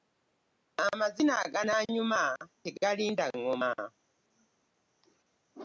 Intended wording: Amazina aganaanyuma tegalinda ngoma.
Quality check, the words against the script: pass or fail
pass